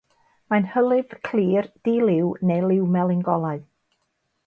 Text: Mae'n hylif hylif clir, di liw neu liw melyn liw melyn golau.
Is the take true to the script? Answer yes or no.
no